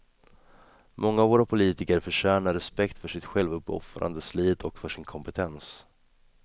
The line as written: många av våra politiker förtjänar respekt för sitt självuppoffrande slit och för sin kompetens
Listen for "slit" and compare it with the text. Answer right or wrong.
right